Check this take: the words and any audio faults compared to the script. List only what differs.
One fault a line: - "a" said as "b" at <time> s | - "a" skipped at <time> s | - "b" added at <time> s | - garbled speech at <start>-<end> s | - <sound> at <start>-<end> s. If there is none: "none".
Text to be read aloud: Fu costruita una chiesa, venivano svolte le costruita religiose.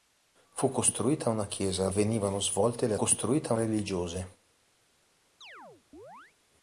- chirp at 5.4-6.3 s